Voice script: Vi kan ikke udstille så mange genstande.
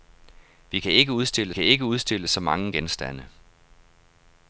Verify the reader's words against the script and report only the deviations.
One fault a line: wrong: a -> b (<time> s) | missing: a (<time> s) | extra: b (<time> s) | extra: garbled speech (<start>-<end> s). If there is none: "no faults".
extra: kan ikke udstille (1.5 s)